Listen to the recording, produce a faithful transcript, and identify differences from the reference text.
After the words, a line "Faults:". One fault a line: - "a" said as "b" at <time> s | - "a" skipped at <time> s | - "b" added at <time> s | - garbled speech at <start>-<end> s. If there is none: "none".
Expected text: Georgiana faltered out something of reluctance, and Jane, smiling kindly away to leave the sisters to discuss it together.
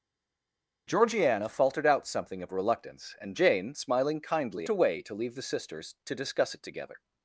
Georgiana faltered out something of reluctance, and Jane, smiling kindly away to leave the sisters to discuss it together.
Faults:
none